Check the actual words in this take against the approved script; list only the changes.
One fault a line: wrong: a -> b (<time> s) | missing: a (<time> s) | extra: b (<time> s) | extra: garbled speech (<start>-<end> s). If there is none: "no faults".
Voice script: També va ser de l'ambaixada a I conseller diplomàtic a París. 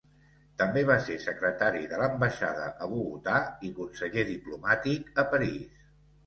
extra: secretari (1.2 s)
extra: Bogotà (2.9 s)